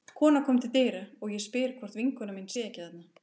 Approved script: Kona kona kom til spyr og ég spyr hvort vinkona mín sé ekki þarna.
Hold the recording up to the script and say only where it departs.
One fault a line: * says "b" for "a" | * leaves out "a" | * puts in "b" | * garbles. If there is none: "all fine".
* leaves out "kona"
* says "dyra" for "spyr"